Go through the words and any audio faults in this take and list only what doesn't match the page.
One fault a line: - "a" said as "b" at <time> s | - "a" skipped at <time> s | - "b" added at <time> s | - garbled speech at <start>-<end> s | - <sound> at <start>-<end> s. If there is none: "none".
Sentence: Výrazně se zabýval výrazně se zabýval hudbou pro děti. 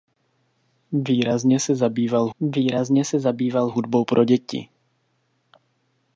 none